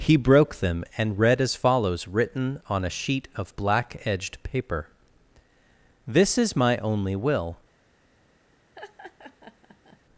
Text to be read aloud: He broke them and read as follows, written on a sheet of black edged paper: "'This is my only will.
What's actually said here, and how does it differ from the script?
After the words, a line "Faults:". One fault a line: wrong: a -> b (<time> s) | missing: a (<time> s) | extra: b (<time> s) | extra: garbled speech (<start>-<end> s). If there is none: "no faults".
He broke them and read as follows, written on a sheet of black edged paper: "'This is my only will.
Faults:
no faults